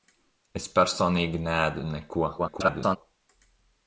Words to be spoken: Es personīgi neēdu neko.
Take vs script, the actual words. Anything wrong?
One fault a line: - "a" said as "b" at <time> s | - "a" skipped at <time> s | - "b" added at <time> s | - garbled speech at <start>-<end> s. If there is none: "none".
- garbled speech at 2.4-3.0 s